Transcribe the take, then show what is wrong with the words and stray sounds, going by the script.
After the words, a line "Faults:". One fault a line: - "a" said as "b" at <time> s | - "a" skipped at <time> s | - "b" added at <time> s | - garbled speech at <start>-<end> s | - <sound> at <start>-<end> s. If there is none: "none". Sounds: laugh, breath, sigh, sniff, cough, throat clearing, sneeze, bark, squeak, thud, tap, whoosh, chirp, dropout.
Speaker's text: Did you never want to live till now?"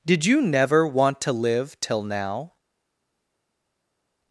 Did you never want to live till now?"
Faults:
none